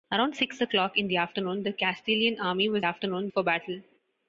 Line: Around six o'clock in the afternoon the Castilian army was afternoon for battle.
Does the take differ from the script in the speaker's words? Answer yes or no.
no